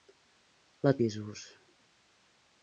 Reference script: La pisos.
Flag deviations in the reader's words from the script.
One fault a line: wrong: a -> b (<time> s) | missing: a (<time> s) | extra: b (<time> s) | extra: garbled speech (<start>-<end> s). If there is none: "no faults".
no faults